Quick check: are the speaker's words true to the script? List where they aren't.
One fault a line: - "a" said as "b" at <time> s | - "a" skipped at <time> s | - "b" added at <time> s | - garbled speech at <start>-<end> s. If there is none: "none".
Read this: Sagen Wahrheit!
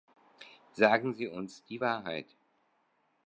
- "Sie uns die" added at 1.1 s